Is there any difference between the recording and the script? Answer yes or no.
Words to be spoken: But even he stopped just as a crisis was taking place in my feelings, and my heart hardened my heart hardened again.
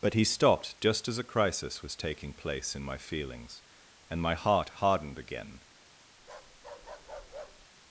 yes